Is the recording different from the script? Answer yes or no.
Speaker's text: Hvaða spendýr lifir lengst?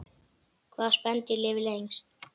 no